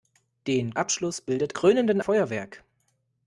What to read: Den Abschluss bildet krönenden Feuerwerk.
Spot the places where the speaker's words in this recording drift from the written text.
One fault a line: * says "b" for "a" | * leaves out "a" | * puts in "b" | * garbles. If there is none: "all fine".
all fine